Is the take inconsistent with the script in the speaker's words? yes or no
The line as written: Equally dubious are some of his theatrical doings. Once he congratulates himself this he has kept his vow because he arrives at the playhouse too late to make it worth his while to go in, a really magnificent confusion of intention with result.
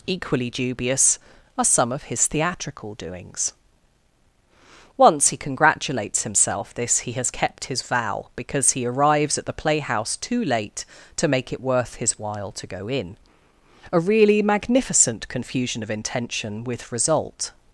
no